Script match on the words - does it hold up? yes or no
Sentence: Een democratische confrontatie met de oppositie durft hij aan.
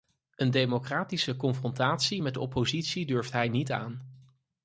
no